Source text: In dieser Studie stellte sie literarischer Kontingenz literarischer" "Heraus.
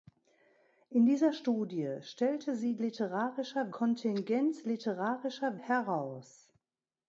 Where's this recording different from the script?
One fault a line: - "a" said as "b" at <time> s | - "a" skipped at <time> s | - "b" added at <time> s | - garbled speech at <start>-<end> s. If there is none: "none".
none